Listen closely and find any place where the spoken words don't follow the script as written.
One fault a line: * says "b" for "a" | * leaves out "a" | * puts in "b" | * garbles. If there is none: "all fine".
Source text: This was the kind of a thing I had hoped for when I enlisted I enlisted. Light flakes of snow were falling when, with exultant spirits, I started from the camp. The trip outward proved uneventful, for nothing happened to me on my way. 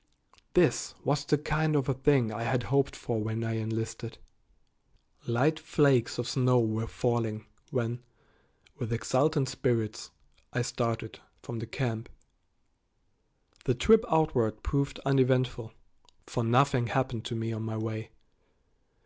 * leaves out "I enlisted"